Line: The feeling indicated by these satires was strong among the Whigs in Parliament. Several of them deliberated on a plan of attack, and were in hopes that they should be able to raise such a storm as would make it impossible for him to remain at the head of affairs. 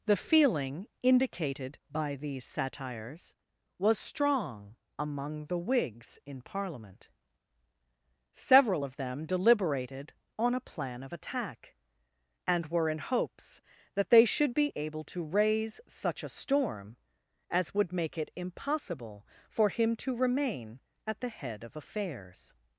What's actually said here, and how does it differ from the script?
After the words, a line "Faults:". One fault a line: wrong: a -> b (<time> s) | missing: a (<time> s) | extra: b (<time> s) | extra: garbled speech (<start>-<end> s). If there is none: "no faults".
The feeling indicated by these satires was strong among the Whigs in Parliament. Several of them deliberated on a plan of attack, and were in hopes that they should be able to raise such a storm as would make it impossible for him to remain at the head of affairs.
Faults:
no faults